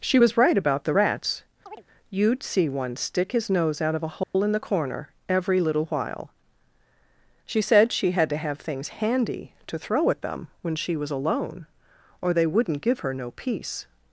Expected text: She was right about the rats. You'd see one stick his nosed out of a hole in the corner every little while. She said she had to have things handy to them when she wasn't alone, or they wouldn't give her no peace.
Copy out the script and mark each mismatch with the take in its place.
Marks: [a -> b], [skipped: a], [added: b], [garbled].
She was right about the rats. You'd see one stick his [nosed -> nose] out of a hole in the corner every little while. She said she had to have things handy to [added: throw at] them when she [wasn't -> was] alone, or they wouldn't give her no peace.